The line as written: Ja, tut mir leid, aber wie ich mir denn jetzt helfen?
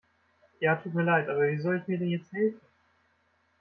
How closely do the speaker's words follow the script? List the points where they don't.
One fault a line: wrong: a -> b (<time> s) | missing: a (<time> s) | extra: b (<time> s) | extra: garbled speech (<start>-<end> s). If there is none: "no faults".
extra: soll (1.6 s)